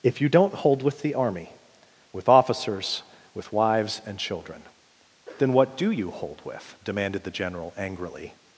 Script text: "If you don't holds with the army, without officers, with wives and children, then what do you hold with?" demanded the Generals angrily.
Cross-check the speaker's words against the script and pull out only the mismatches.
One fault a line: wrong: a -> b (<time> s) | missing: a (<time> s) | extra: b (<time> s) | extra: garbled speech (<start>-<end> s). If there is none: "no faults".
wrong: holds -> hold (0.5 s)
wrong: without -> with (2.1 s)
wrong: Generals -> General (7.3 s)